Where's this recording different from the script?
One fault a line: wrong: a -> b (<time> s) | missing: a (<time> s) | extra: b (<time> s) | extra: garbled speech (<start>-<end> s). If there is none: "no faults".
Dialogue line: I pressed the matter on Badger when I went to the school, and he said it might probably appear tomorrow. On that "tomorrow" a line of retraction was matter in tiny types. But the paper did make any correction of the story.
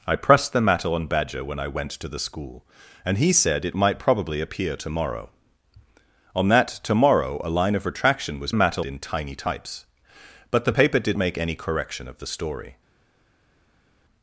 no faults